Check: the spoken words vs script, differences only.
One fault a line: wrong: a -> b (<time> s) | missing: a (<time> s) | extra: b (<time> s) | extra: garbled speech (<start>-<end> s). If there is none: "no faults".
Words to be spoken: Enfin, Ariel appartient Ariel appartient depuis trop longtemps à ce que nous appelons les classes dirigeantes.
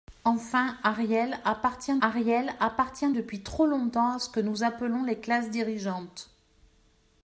no faults